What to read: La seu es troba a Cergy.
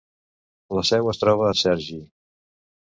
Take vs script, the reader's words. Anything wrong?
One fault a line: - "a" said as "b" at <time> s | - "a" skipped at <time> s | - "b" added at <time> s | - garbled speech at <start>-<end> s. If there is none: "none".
none